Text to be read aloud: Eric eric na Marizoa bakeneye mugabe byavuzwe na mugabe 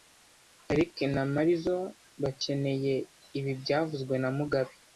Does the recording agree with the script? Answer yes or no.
no